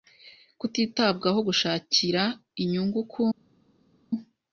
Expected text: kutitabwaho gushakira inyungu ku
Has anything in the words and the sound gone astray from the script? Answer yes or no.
no